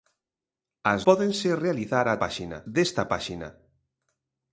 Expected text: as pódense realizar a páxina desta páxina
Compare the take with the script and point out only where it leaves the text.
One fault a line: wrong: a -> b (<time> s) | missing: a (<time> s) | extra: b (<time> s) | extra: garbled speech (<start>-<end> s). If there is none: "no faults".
no faults